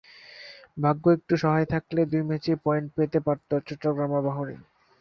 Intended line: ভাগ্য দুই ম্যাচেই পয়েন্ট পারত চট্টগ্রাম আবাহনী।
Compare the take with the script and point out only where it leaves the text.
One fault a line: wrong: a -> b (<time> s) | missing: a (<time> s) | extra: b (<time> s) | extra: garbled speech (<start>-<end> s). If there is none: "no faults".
extra: একটু সহায় থাকলে (1.2 s)
extra: পেতে (3.0 s)